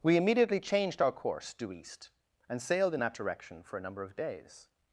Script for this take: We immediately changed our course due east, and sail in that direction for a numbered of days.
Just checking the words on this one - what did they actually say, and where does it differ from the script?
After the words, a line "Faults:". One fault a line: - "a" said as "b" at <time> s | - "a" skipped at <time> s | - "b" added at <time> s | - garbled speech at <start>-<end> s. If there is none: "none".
We immediately changed our course due east, and sailed in that direction for a number of days.
Faults:
- "sail" said as "sailed" at 2.6 s
- "numbered" said as "number" at 3.8 s